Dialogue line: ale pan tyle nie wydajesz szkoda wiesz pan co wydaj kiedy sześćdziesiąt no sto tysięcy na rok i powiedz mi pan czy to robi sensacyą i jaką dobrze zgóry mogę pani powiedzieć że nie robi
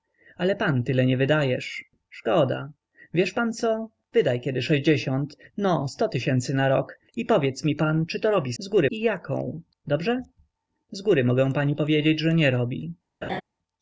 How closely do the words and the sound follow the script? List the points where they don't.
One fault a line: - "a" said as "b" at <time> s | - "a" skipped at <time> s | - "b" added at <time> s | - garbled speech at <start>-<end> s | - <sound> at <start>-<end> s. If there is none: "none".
- "sensacyą" said as "zgóry" at 8.6 s
- laugh at 13.2-13.4 s